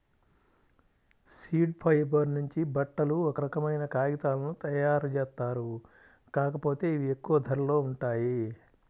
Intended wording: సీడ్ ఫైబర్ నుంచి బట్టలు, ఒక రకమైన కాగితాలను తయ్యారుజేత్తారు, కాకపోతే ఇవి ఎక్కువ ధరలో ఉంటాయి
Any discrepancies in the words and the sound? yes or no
no